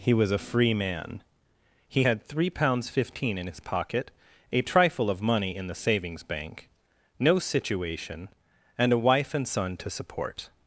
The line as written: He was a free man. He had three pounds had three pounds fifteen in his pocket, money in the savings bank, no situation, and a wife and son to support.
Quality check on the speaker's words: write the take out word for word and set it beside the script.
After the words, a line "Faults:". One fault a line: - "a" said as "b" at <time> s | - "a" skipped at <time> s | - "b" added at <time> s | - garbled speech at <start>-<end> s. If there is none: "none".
He was a free man. He had three pounds fifteen in his pocket, a trifle of money in the savings bank, no situation, and a wife and son to support.
Faults:
- "had three pounds" skipped at 2.9 s
- "a trifle of" added at 4.5 s